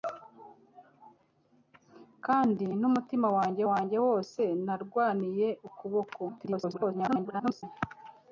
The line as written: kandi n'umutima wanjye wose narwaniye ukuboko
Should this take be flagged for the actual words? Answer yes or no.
yes